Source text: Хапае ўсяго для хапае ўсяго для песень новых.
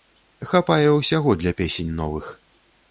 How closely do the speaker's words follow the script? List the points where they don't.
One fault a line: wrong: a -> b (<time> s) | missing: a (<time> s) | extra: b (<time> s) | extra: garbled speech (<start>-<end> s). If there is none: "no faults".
missing: хапае ўсяго для (1.6 s)